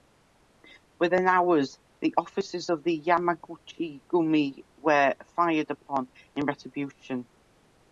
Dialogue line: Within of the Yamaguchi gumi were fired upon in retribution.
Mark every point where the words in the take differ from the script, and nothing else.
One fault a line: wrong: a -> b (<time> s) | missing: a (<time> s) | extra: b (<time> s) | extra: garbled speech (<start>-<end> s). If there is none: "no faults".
extra: hours the offices (1.3 s)